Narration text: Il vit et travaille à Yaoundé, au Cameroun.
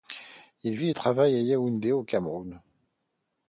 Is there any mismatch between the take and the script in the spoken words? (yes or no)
no